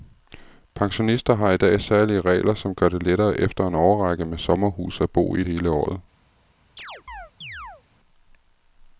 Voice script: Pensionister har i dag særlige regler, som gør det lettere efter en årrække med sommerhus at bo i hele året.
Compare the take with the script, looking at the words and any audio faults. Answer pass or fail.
fail